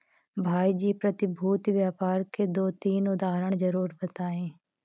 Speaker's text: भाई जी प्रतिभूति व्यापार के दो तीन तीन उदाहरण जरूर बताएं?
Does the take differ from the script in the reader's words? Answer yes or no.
yes